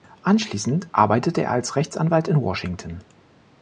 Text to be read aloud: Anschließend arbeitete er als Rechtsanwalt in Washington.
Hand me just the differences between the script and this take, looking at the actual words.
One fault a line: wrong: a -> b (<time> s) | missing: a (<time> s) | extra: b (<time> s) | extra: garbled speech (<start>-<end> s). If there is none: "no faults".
no faults